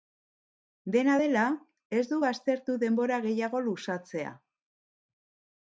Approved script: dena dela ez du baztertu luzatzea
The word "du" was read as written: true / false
true